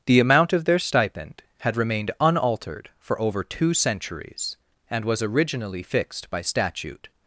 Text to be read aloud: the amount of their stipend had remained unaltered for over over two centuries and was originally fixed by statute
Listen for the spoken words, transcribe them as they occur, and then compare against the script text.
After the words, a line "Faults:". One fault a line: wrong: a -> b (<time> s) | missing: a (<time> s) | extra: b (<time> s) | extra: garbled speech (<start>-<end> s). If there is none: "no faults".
the amount of their stipend had remained unaltered for over two centuries and was originally fixed by statute
Faults:
missing: over (3.4 s)